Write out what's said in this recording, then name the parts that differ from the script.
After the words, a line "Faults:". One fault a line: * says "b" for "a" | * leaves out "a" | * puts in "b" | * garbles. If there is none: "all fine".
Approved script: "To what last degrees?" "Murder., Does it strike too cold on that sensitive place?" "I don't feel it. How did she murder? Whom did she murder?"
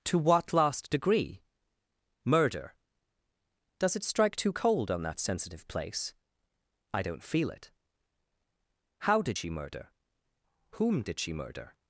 "To what last degree?" "Murder., Does it strike too cold on that sensitive place?" "I don't feel it. How did she murder? Whom did she murder?"
Faults:
* says "degree" for "degrees"